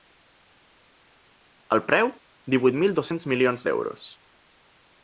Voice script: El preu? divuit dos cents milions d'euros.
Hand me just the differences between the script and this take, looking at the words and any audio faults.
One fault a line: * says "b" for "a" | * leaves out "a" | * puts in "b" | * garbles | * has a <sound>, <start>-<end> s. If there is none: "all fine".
* puts in "mil"